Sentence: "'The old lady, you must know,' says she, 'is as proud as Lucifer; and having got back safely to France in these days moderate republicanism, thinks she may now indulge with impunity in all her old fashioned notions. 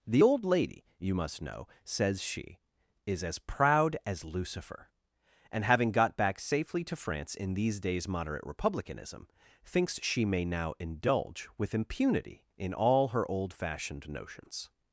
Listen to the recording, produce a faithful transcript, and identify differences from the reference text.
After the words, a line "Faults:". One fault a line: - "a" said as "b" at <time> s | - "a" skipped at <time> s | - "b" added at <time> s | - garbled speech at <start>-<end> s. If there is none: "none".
"'The old lady, you must know,' says she, 'is as proud as Lucifer; and having got back safely to France in these days moderate republicanism, thinks she may now indulge with impunity in all her old fashioned notions.
Faults:
none